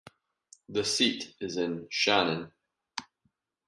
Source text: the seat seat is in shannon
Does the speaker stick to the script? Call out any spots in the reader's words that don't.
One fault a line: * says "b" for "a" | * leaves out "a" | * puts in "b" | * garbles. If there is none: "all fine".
* leaves out "seat"